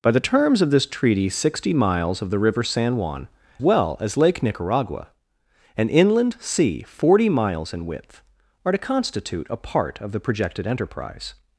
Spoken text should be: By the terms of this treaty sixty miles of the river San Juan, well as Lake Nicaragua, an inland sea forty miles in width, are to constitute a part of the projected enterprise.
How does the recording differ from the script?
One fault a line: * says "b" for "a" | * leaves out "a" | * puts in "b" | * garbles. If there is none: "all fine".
all fine